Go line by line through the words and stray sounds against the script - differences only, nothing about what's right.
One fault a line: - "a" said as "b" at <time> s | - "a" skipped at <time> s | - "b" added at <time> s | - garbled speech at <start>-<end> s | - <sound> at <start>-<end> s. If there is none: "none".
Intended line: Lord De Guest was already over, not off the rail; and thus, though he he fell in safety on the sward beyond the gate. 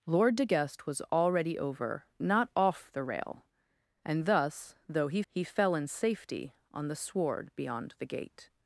none